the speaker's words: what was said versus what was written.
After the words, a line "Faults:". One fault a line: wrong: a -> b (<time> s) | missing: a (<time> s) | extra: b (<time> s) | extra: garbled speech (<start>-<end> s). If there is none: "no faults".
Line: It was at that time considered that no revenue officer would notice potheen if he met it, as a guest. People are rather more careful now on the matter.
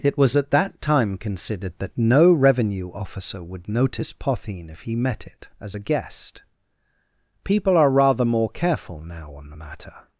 It was at that time considered that no revenue officer would notice potheen if he met it, as a guest. People are rather more careful now on the matter.
Faults:
no faults